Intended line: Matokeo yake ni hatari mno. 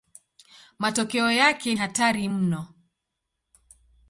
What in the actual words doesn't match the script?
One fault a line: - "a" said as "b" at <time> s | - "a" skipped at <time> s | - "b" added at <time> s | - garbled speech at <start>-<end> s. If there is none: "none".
- "ni" skipped at 1.8 s